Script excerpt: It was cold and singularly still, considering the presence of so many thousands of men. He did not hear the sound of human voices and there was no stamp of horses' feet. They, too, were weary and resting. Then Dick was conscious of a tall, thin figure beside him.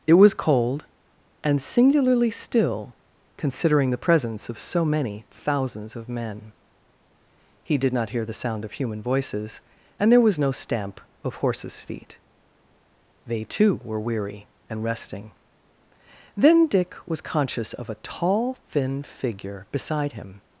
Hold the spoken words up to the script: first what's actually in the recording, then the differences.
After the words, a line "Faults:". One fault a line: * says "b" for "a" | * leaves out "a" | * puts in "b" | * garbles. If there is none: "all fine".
It was cold and singularly still, considering the presence of so many thousands of men. He did not hear the sound of human voices and there was no stamp of horses' feet. They, too, were weary and resting. Then Dick was conscious of a tall, thin figure beside him.
Faults:
all fine